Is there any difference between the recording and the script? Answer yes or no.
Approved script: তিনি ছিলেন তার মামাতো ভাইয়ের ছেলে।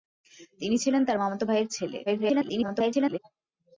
yes